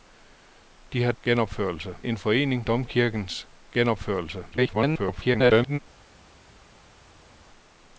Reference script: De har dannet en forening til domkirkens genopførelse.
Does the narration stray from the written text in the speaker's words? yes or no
yes